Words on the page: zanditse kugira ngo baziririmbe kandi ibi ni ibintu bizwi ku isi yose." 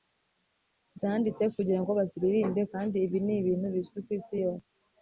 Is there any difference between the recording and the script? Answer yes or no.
no